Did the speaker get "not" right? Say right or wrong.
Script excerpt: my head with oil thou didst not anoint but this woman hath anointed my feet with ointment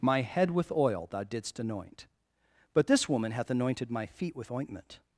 wrong